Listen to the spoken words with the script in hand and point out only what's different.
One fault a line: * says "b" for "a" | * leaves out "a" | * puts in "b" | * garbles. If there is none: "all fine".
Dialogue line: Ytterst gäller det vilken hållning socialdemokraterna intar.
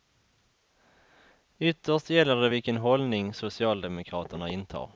all fine